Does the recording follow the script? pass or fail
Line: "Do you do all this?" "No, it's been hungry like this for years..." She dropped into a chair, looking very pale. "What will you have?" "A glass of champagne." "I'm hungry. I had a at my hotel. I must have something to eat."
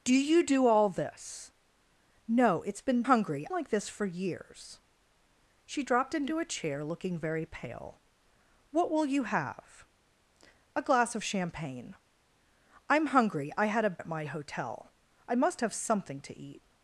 pass